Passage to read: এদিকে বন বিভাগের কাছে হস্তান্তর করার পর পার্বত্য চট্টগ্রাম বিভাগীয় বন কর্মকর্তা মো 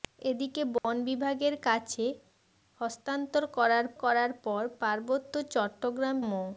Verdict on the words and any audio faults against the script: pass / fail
fail